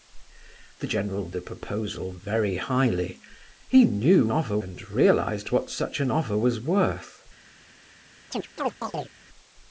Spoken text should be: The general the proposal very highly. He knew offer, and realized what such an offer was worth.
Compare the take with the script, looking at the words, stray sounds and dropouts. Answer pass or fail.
fail